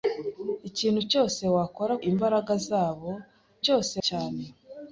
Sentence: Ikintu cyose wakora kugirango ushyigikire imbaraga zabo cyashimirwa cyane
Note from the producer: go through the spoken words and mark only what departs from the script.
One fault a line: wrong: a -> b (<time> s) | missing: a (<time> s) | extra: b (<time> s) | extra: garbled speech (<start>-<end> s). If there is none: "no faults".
missing: kugirango ushyigikire (1.9 s)
wrong: cyashimirwa -> cyose (3.6 s)